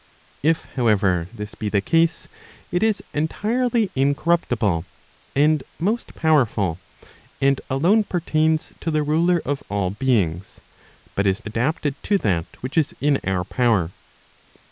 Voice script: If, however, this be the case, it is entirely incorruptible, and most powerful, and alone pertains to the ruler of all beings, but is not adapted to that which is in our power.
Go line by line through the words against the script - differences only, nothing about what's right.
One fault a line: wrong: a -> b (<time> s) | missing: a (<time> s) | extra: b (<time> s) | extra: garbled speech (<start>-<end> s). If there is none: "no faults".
missing: not (11.4 s)